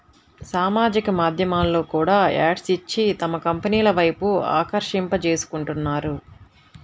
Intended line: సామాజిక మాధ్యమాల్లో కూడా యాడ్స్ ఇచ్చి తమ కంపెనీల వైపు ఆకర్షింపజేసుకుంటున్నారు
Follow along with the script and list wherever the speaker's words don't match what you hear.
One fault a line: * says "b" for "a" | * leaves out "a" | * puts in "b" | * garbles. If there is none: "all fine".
all fine